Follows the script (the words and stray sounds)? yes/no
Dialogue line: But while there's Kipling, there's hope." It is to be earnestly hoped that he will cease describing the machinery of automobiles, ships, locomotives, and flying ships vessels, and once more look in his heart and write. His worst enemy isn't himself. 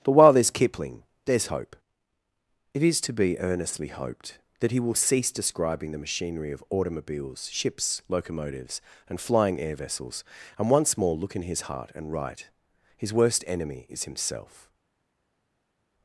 no